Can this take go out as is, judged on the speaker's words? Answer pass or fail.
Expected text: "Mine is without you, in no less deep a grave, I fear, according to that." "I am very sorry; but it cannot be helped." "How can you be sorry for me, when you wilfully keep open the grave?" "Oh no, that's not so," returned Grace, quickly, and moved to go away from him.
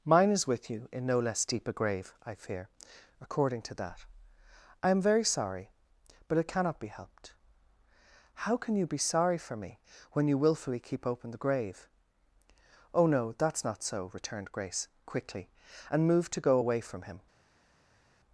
fail